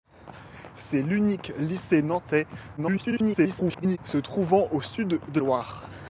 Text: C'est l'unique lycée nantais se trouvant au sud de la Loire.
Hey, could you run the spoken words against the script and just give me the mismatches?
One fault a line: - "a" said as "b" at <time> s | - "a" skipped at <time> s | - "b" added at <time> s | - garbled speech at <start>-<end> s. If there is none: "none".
- garbled speech at 2.8-4.0 s
- "la" skipped at 5.4 s